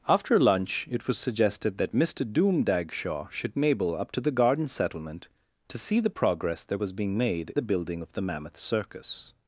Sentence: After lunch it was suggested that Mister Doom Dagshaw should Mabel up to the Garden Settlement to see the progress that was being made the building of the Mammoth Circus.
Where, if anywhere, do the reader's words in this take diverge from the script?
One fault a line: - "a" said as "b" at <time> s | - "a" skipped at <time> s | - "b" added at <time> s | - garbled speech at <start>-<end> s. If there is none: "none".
none